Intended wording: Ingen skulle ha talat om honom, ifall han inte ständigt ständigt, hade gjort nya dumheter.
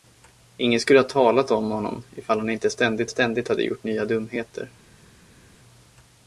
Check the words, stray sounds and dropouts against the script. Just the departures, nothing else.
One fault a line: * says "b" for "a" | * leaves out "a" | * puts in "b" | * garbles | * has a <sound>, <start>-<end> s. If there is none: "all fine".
all fine